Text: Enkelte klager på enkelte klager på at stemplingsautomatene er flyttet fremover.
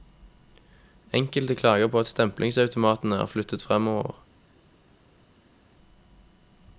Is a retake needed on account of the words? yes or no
yes